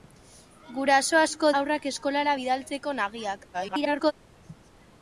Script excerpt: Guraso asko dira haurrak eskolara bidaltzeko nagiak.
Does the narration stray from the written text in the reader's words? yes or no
yes